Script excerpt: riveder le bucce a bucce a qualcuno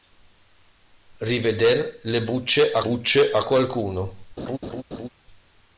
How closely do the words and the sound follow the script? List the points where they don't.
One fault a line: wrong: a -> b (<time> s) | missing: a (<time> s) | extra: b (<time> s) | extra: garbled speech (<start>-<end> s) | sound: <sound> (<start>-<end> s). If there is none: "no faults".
sound: laugh (4.4-5.1 s)